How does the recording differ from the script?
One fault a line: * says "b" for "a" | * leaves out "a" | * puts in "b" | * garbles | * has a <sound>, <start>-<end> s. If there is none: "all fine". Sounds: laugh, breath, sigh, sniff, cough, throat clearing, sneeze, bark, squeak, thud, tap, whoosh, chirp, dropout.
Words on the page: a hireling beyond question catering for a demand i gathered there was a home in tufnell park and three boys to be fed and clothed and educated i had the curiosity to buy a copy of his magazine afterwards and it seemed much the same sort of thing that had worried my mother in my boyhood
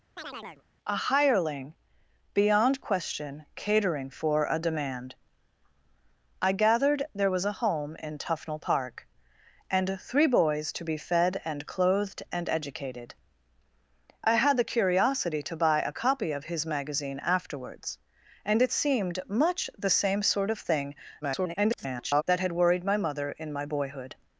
* has a chirp, 0.2-0.6 s
* garbles